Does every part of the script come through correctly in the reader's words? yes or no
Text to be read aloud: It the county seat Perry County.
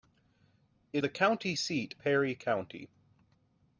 yes